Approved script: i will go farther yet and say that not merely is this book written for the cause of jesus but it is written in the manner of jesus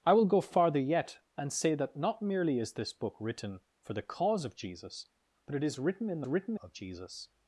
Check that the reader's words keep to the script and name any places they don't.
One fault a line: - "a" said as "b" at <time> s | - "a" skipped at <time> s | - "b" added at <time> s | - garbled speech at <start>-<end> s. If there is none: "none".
- "manner" said as "written" at 6.3 s